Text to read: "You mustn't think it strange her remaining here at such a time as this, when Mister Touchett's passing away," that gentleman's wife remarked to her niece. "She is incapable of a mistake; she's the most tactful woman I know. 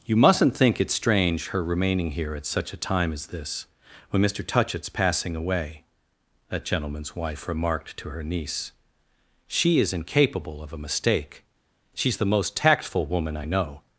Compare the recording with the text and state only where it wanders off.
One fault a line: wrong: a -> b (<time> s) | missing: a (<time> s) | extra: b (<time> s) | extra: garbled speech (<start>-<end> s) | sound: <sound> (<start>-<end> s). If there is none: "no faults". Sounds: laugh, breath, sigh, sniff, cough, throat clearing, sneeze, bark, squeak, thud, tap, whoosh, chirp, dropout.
no faults